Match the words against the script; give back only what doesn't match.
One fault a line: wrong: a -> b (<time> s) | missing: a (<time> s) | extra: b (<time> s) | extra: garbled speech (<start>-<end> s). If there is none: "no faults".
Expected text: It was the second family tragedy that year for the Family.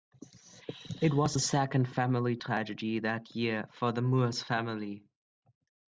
extra: Moores (4.0 s)